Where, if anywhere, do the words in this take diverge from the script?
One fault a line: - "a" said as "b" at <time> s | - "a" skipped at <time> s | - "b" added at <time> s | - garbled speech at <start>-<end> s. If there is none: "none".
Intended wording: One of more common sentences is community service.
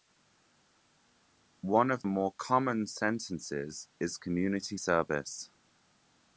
none